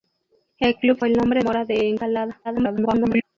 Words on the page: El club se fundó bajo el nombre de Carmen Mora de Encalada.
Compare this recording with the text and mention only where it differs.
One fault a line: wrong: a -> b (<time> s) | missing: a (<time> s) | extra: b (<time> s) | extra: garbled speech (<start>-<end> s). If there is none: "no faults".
missing: se fundó bajo (1.0 s)
missing: de Carmen (1.4 s)
extra: garbled speech (2.4-3.2 s)